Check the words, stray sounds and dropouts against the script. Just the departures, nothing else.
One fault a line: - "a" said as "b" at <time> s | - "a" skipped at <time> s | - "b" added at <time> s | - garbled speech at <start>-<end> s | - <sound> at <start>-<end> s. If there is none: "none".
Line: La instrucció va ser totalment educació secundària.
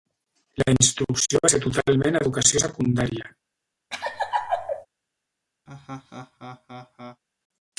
- laugh at 3.9-4.9 s
- laugh at 5.7-7.2 s